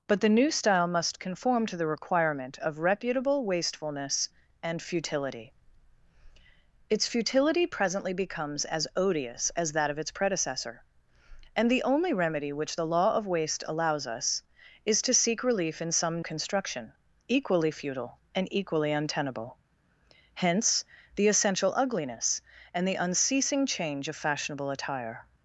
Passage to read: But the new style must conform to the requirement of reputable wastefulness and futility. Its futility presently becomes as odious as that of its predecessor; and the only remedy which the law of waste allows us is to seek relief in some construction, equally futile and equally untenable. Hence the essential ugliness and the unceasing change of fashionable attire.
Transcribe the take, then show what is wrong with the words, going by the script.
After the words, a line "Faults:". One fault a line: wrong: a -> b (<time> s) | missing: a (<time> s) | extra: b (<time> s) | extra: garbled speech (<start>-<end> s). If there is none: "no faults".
But the new style must conform to the requirement of reputable wastefulness and futility. Its futility presently becomes as odious as that of its predecessor; and the only remedy which the law of waste allows us is to seek relief in some construction, equally futile and equally untenable. Hence the essential ugliness and the unceasing change of fashionable attire.
Faults:
no faults